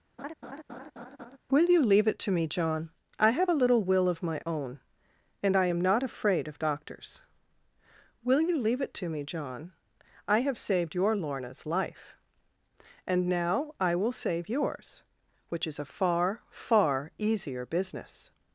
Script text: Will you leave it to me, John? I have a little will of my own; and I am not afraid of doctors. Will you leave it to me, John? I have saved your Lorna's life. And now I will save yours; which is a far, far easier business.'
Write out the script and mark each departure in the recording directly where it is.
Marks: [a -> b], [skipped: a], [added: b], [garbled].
Will you leave it to me, John? I have a little will of my own; and I am not afraid of doctors. Will you leave it to me, John? I have saved your Lorna's life. And now I will save yours; which is a far, far easier business.'